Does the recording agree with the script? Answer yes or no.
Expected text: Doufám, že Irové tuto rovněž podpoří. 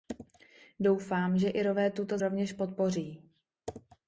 yes